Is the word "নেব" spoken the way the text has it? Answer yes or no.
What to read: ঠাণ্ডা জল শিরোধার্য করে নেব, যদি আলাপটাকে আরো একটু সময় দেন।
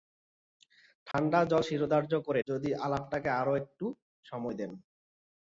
no